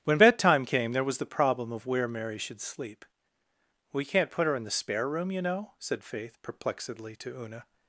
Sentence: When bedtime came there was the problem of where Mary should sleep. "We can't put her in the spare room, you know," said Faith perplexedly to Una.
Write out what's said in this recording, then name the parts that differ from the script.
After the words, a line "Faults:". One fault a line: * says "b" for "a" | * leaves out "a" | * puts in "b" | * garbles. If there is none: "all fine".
When bedtime came there was the problem of where Mary should sleep. "We can't put her in the spare room, you know," said Faith perplexedly to Una.
Faults:
all fine